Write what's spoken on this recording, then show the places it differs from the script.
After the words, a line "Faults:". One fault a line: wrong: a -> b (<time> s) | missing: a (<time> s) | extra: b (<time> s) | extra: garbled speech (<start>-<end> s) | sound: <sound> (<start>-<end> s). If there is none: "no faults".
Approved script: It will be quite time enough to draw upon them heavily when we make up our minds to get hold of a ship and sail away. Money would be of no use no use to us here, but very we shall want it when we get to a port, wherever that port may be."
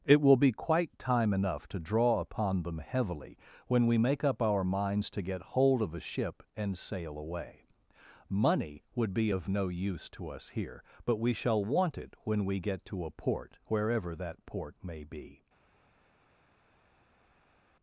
It will be quite time enough to draw upon them heavily when we make up our minds to get hold of a ship and sail away. Money would be of no use to us here, but we shall want it when we get to a port, wherever that port may be."
Faults:
missing: no use (10.1 s)
missing: very (11.2 s)